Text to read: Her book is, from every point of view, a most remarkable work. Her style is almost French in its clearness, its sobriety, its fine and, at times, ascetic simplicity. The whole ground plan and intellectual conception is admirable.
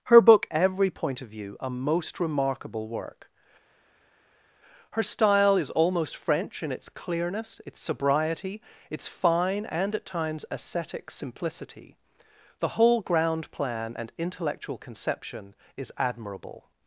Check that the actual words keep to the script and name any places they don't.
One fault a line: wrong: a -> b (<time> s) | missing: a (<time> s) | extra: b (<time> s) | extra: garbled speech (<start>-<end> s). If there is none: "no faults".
missing: is from (0.5 s)